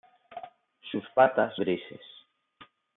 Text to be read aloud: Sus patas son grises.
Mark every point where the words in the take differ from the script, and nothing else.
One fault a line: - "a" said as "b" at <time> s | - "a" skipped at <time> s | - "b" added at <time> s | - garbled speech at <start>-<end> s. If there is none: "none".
- "son" skipped at 1.5 s